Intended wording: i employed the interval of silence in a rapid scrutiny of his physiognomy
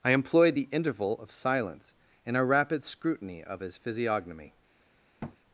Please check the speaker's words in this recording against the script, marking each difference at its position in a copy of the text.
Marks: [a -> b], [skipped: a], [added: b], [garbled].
i employed the interval of silence in a rapid scrutiny of his physiognomy